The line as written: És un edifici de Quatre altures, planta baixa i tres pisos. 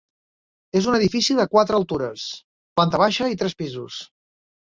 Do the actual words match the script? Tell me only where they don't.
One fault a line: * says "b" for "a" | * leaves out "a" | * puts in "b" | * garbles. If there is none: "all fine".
all fine